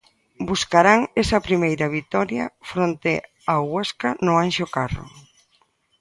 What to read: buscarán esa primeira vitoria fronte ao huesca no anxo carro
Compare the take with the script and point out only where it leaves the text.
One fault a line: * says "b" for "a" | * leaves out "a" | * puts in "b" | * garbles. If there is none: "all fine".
all fine